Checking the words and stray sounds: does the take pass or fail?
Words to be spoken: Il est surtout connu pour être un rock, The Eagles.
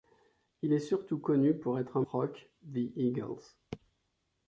pass